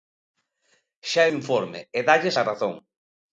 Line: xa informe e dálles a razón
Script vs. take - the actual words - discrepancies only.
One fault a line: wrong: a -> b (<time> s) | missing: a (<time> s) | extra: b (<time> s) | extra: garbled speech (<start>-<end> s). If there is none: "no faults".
no faults